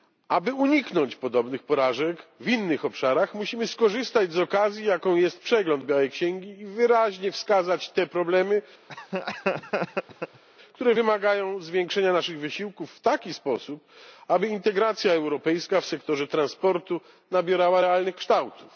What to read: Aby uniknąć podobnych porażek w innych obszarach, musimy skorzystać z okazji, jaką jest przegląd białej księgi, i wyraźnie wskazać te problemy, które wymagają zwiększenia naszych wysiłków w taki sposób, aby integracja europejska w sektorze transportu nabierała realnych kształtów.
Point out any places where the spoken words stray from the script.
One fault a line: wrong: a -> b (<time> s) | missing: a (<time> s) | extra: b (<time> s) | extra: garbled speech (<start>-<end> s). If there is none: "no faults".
no faults